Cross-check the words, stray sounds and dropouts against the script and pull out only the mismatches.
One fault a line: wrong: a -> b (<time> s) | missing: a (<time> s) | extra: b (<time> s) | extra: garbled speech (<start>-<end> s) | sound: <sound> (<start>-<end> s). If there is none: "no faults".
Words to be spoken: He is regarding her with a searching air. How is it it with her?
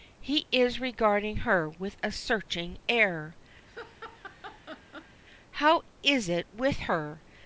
sound: laugh (3.7-5.2 s)
missing: it (6.5 s)